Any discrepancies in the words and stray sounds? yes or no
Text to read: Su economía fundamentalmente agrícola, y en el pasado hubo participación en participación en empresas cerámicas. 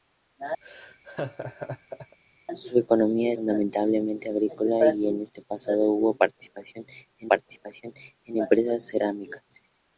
yes